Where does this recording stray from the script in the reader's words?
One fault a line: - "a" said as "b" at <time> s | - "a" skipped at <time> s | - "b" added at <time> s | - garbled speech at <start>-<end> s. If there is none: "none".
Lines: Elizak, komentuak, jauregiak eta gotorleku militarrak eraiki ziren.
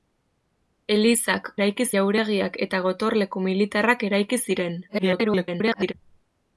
- "komentuak" said as "eraiki" at 1.6 s
- garbled speech at 4.9-5.9 s